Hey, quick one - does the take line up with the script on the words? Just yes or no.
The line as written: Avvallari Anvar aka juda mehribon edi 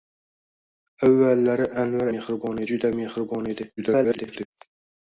no